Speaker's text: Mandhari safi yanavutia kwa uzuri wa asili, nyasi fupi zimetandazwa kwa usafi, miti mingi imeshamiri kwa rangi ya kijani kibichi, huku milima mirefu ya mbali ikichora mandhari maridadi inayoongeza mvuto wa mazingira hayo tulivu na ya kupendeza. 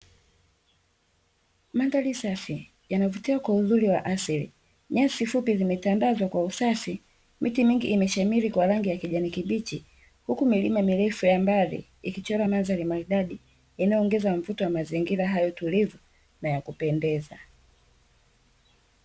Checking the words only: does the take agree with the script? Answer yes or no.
yes